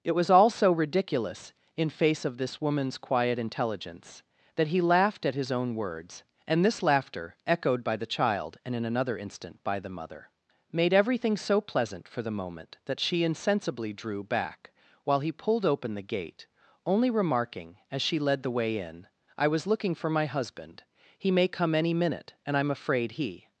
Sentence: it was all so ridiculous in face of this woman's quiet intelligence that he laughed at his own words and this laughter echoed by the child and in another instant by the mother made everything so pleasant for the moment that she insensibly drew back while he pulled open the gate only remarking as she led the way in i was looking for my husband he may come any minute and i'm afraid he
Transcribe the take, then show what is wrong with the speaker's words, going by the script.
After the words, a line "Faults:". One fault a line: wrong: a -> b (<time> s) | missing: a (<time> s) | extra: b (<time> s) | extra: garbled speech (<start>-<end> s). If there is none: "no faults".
it was all so ridiculous in face of this woman's quiet intelligence that he laughed at his own words and this laughter echoed by the child and in another instant by the mother made everything so pleasant for the moment that she insensibly drew back while he pulled open the gate only remarking as she led the way in i was looking for my husband he may come any minute and i'm afraid he
Faults:
no faults